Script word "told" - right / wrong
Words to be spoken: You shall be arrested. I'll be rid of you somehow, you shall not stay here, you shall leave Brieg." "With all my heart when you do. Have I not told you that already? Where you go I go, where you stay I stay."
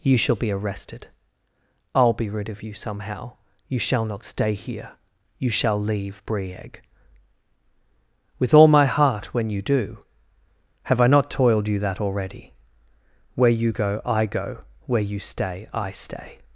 wrong